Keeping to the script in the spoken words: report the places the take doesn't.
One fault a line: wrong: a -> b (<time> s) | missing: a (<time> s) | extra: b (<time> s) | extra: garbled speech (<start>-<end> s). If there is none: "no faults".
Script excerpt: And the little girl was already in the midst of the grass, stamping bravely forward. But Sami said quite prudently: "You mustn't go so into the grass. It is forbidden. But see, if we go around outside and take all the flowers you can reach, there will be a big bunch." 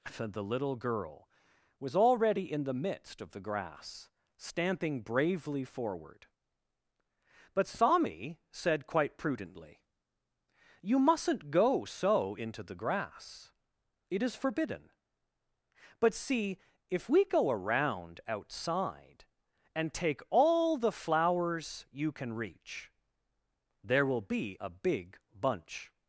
missing: And (0.1 s)